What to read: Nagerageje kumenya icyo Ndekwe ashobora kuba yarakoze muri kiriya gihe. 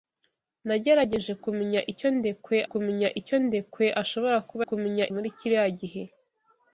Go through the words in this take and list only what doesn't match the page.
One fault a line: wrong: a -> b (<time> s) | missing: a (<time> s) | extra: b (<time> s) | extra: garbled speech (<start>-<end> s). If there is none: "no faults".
extra: kumenya icyo Ndekwe (2.7 s)
wrong: yarakoze -> kumenya (4.7 s)